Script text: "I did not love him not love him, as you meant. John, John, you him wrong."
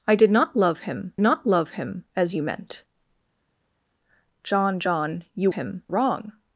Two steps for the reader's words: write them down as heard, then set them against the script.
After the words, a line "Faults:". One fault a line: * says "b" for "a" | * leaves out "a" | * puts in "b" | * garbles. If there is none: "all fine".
"I did not love him not love him, as you meant. John, John, you him wrong."
Faults:
all fine